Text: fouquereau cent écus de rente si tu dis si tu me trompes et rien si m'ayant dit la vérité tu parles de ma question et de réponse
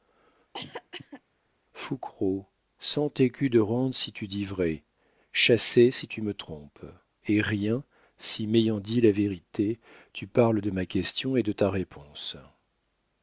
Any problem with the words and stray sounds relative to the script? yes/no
yes